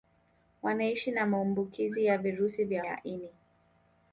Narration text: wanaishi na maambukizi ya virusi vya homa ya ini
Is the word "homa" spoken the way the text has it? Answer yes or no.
no